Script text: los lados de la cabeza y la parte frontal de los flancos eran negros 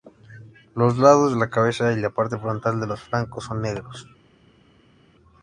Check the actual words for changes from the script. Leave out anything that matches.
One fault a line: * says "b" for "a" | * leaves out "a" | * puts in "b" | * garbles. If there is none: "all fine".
* says "son" for "eran"